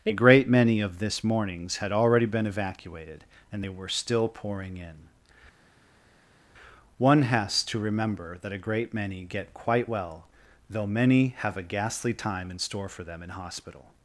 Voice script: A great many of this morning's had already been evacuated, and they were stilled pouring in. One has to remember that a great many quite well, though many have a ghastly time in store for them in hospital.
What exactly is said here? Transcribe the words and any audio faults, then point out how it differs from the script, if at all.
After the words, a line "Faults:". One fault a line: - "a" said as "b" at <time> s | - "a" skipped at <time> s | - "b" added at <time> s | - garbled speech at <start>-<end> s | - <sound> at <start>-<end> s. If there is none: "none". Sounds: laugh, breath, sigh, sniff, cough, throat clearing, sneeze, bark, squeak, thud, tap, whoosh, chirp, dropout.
A great many of this morning's had already been evacuated, and they were still pouring in. One has to remember that a great many get quite well, though many have a ghastly time in store for them in hospital.
Faults:
- "stilled" said as "still" at 3.9 s
- "get" added at 9.2 s